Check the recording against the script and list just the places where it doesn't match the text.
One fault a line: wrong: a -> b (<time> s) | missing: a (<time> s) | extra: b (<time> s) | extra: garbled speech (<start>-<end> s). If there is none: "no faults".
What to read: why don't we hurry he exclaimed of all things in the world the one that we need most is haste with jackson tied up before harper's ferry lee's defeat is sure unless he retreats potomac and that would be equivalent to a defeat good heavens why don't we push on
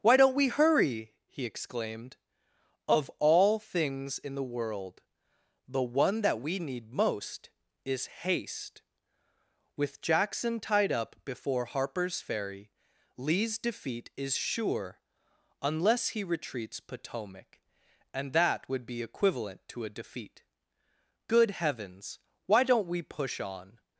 no faults